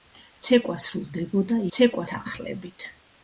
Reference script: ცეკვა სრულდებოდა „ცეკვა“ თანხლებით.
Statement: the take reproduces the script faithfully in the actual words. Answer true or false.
true